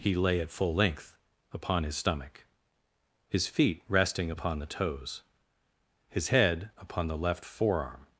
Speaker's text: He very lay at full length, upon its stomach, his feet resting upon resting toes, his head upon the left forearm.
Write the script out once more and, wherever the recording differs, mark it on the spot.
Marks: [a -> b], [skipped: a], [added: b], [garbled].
He [skipped: very] lay at full length, upon [its -> his] stomach, his feet resting upon [resting -> the] toes, his head upon the left forearm.